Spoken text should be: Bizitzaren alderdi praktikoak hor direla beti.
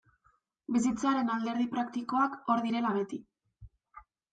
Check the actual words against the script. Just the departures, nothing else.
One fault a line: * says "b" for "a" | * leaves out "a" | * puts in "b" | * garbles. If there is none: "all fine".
all fine